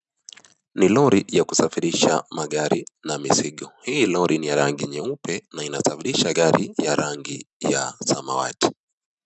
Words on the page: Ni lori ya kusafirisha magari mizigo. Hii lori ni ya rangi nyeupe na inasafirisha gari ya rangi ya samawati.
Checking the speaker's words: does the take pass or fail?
fail